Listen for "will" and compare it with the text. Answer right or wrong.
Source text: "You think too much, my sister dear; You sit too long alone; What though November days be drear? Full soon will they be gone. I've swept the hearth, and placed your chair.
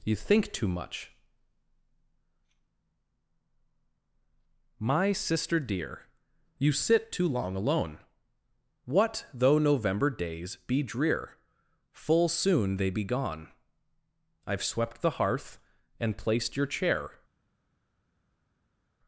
wrong